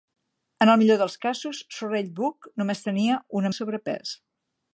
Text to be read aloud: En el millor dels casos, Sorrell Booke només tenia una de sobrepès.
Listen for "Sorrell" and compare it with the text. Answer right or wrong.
right